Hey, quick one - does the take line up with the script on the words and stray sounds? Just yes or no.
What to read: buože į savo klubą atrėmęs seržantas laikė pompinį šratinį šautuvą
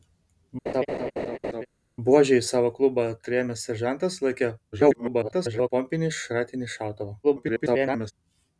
no